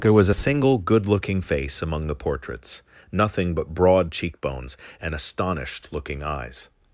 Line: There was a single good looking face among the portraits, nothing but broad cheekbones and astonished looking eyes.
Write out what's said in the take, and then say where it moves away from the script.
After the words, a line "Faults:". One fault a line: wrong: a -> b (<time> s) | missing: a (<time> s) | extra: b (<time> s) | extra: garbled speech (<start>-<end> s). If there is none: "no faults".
There was a single good looking face among the portraits, nothing but broad cheekbones and astonished looking eyes.
Faults:
no faults